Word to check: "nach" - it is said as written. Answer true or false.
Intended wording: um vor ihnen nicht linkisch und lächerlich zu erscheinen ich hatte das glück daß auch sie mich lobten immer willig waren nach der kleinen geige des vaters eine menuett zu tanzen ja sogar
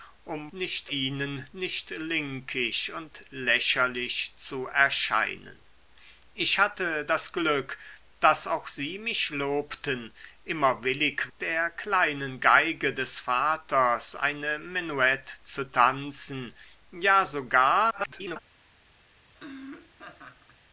false